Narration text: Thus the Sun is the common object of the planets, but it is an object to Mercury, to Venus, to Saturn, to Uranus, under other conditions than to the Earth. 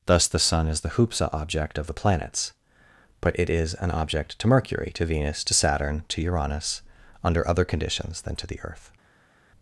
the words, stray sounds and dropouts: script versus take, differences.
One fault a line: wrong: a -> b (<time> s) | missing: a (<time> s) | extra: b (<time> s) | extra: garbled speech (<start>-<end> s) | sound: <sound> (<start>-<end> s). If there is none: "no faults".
wrong: common -> hoopsa (0.9 s)